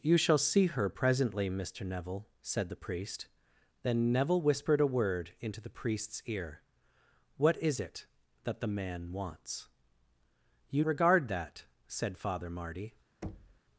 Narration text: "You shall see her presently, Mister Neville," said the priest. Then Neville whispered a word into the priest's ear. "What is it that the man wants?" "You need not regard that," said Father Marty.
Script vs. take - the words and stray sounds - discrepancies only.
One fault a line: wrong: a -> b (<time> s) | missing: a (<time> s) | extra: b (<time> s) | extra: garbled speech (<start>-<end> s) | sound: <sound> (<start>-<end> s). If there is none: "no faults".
missing: need not (10.8 s)
sound: thud (13.2-13.6 s)